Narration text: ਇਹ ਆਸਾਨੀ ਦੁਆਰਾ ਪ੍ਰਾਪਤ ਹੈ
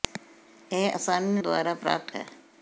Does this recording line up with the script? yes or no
yes